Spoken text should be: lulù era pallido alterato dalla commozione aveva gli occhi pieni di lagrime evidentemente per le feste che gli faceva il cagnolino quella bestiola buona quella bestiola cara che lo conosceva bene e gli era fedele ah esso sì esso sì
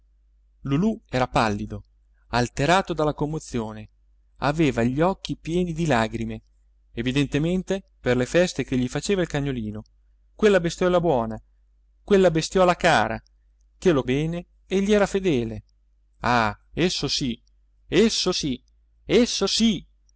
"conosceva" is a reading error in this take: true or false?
true